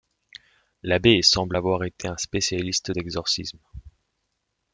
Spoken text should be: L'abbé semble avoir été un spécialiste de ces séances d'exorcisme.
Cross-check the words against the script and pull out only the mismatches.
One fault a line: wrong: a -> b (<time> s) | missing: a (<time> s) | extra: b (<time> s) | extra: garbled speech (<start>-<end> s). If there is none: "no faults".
missing: de ces séances (2.9 s)